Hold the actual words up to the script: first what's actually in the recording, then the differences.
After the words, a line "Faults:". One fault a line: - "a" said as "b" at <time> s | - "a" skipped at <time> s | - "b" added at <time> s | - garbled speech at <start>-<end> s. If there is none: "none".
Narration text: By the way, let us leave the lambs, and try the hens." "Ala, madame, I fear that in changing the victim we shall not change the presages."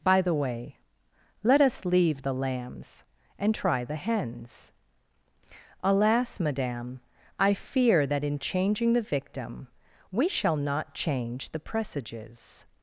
By the way, let us leave the lambs, and try the hens." "Alas, madame, I fear that in changing the victim we shall not change the presages."
Faults:
- "Ala" said as "Alas" at 5.8 s